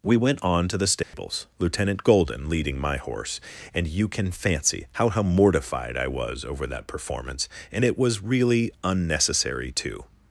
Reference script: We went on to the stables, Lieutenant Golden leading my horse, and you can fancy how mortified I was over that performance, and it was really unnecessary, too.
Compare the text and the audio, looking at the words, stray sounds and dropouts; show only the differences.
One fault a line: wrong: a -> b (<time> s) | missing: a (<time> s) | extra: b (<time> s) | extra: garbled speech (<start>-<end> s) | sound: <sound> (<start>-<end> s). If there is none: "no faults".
sound: dropout (1.0-1.1 s)
extra: how (5.1 s)